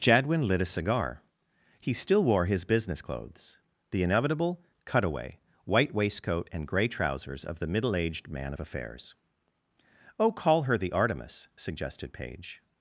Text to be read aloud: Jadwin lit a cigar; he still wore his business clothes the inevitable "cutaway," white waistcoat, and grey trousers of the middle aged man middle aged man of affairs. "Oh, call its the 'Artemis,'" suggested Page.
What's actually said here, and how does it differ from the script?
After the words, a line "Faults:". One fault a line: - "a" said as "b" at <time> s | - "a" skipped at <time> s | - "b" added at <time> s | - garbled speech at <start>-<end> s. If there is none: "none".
Jadwin lit a cigar; he still wore his business clothes the inevitable "cutaway," white waistcoat, and grey trousers of the middle aged man of affairs. "Oh, call her the 'Artemis,'" suggested Page.
Faults:
- "middle aged man" skipped at 8.5 s
- "its" said as "her" at 10.6 s